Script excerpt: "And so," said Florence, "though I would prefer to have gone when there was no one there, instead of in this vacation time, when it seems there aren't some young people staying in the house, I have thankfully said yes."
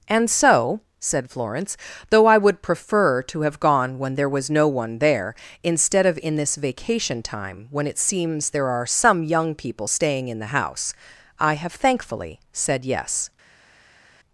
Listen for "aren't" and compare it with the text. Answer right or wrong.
wrong